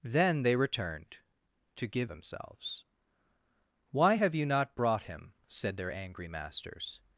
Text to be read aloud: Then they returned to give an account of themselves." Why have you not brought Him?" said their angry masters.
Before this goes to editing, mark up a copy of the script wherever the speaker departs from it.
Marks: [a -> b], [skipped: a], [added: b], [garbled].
Then they returned to give [skipped: an account of] themselves." Why have you not brought Him?" said their angry masters.